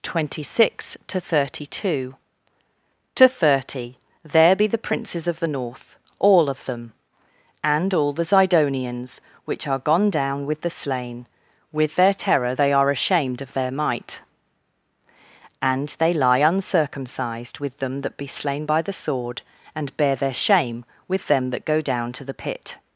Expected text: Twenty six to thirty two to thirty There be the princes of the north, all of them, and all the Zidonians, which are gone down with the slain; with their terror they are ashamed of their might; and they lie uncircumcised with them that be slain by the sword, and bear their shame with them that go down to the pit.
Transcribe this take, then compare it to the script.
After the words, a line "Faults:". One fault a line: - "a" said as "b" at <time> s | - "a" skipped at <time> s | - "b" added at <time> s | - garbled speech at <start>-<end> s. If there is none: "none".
Twenty six to thirty two to thirty There be the princes of the north, all of them, and all the Zidonians, which are gone down with the slain; with their terror they are ashamed of their might; and they lie uncircumcised with them that be slain by the sword, and bear their shame with them that go down to the pit.
Faults:
none